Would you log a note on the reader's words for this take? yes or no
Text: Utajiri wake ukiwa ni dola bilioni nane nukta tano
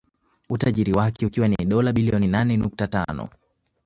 no